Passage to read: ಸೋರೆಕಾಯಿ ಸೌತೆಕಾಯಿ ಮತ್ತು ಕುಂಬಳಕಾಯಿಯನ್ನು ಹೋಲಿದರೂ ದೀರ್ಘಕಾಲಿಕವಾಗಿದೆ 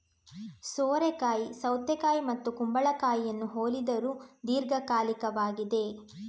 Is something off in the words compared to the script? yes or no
no